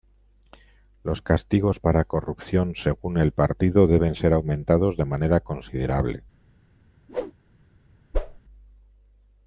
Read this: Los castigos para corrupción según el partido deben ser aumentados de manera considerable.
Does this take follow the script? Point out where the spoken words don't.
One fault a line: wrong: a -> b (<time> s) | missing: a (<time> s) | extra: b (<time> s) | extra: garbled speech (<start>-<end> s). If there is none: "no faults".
no faults